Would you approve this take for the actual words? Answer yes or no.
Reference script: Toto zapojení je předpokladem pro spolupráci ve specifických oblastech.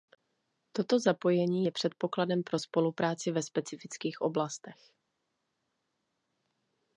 yes